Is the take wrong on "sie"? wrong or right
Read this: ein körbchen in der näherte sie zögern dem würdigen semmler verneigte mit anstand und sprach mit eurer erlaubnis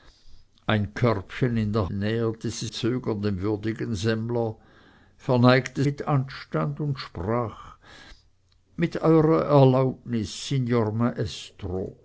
right